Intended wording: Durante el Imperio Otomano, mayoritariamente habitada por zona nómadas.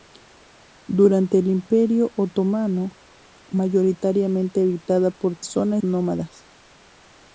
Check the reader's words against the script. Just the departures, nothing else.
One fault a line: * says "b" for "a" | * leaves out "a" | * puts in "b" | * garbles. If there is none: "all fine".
all fine